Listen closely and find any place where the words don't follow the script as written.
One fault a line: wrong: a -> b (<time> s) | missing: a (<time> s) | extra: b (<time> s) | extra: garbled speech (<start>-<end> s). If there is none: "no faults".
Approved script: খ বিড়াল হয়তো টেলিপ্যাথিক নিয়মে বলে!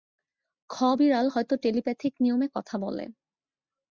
extra: কথা (2.6 s)